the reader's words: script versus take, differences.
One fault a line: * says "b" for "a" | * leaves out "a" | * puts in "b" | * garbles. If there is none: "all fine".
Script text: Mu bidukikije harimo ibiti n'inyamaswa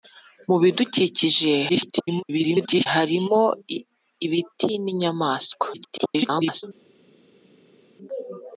* garbles
* garbles